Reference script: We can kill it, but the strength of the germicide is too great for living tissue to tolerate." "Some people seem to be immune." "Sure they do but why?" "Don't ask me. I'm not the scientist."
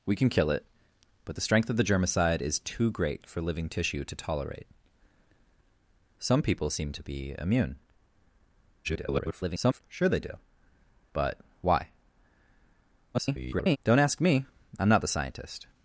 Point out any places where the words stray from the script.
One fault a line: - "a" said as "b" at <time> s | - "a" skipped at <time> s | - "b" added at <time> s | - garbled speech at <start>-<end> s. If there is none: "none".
- garbled speech at 8.8-9.8 s
- garbled speech at 13.1-13.8 s